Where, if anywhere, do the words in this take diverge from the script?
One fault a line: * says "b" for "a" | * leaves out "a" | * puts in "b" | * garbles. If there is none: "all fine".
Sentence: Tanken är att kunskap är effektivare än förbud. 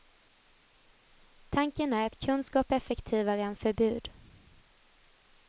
all fine